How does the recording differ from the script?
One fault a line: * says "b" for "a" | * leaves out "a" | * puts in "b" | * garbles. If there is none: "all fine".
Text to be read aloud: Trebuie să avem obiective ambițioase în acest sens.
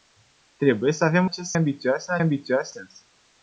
* says "acest" for "obiective"
* says "ambițioase" for "acest"